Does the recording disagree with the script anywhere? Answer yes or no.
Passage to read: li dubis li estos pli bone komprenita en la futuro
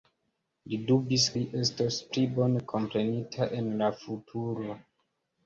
no